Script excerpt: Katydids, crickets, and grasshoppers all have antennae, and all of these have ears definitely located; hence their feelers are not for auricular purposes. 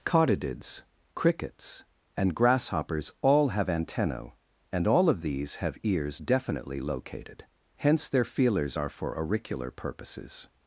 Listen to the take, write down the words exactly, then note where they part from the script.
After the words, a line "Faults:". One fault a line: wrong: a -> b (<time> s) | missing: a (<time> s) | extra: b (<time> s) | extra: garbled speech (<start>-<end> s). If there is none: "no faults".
Katydids, crickets, and grasshoppers all have antennae, and all of these have ears definitely located; hence their feelers are for auricular purposes.
Faults:
missing: not (8.9 s)